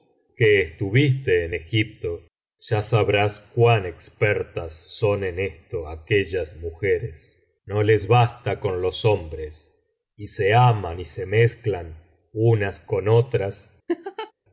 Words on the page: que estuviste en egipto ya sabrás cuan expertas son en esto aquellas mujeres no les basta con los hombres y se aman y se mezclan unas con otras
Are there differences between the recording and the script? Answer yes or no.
no